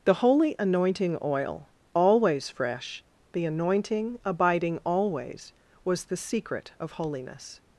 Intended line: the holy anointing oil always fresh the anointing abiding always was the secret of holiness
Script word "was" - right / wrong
right